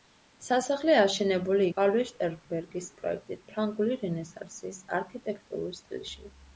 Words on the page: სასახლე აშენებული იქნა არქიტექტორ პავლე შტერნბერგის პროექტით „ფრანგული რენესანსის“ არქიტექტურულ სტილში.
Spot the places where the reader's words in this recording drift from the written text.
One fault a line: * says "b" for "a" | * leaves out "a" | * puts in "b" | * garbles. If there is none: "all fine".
* leaves out "იქნა არქიტექტორ"